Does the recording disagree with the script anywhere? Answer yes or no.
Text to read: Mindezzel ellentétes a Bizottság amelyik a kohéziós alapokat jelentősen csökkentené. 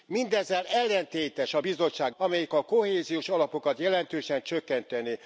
no